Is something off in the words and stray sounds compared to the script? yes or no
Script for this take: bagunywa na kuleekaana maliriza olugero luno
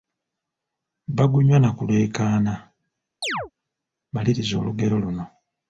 yes